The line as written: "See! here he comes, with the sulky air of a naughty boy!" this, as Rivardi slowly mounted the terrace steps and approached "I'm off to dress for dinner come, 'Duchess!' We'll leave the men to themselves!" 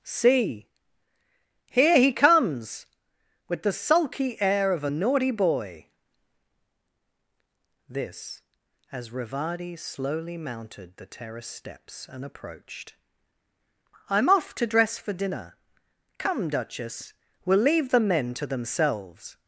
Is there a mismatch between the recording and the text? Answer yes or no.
no